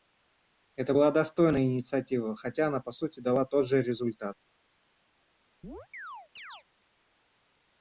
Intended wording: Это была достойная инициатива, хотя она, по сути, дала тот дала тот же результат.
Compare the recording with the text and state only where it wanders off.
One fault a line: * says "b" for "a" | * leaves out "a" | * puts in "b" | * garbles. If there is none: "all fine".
* leaves out "дала тот"